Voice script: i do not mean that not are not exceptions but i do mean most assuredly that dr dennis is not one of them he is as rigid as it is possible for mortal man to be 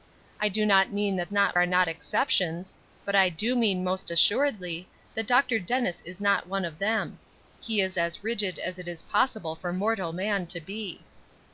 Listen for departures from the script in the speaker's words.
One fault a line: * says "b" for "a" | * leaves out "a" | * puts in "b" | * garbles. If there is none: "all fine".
all fine